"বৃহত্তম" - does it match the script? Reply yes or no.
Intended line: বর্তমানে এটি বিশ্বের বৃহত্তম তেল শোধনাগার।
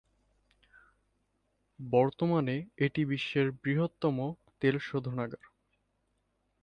yes